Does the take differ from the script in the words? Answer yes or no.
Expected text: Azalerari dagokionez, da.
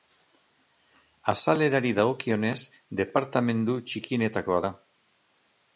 yes